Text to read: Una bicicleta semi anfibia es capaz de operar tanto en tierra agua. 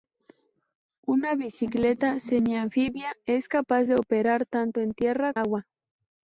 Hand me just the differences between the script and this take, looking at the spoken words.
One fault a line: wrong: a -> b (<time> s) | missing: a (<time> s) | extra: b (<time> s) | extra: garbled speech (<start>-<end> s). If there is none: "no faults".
no faults